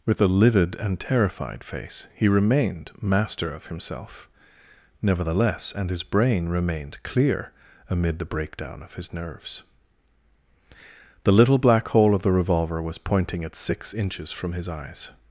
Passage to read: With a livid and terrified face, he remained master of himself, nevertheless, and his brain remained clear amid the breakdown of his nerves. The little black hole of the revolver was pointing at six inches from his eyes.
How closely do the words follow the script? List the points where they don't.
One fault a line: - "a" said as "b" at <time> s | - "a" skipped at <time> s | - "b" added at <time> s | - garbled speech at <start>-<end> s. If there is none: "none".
none